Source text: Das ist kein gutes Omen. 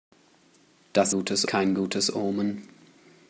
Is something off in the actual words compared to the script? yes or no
yes